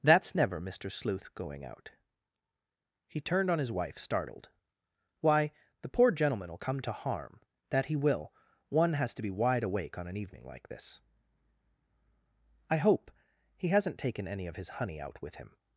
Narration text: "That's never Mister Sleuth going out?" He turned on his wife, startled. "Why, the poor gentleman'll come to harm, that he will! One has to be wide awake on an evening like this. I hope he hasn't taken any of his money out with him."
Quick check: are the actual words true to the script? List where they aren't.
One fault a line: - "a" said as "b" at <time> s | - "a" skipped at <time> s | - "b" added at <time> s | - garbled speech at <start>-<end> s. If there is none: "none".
- "money" said as "honey" at 14.8 s